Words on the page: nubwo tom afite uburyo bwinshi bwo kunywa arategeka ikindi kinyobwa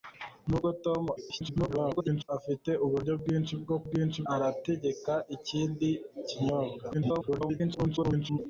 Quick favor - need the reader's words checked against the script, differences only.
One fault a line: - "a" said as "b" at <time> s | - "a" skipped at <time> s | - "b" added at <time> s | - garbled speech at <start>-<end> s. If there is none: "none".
- garbled speech at 1.2-2.3 s
- "kunywa" said as "bwinshi" at 3.9 s
- garbled speech at 6.9-8.4 s